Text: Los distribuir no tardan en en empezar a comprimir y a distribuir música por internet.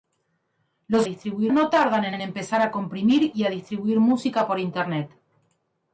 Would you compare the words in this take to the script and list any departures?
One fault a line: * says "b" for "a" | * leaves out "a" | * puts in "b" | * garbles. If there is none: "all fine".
all fine